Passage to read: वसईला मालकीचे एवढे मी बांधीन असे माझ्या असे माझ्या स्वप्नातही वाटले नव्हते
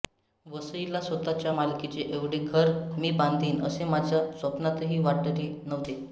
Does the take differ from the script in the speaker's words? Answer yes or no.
yes